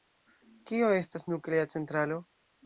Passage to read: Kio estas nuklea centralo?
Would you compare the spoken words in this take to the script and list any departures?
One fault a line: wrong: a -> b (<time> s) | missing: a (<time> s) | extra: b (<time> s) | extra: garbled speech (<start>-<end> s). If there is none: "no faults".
no faults